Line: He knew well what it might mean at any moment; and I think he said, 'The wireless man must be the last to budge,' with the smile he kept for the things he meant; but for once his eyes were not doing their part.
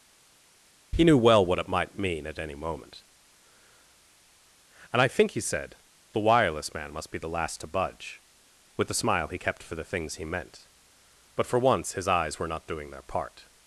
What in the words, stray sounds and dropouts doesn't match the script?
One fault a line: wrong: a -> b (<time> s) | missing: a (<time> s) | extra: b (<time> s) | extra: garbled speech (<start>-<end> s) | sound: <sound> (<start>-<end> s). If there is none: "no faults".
no faults